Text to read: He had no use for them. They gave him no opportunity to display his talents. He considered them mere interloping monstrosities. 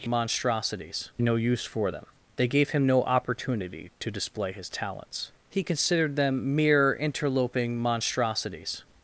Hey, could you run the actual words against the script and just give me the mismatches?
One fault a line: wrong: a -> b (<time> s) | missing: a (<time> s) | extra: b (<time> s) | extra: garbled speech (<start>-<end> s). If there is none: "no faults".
wrong: had -> monstrosities (0.1 s)